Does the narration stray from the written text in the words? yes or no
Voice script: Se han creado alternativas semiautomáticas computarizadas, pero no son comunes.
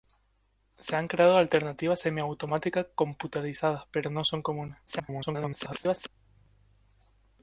yes